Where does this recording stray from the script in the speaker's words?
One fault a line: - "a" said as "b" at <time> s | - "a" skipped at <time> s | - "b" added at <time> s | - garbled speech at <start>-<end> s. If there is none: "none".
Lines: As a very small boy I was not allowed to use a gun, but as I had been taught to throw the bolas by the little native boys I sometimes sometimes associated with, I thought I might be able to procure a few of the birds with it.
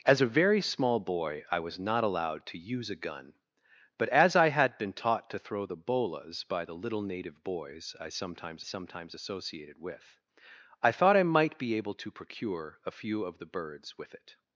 none